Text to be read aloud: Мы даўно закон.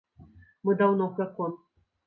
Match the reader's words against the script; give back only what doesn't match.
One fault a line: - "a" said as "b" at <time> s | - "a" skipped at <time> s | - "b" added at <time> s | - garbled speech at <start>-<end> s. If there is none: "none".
none